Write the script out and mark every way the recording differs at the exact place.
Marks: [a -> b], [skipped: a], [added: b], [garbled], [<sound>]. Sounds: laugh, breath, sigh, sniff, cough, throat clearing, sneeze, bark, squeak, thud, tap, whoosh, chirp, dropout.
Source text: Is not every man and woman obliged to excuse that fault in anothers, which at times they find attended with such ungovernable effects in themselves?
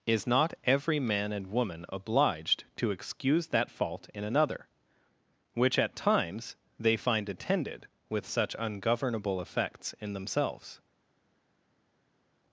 Is not every man and woman obliged to excuse that fault in [anothers, -> another] which at times they find attended with such ungovernable effects in themselves?